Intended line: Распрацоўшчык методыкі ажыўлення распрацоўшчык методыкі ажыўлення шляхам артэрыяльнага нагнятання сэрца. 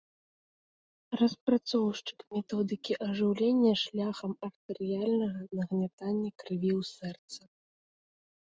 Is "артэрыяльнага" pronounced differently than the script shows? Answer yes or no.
no